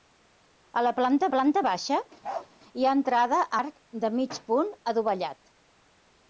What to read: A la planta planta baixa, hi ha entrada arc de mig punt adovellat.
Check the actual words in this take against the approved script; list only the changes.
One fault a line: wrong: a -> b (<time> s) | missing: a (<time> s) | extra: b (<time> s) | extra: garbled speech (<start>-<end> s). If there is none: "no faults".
no faults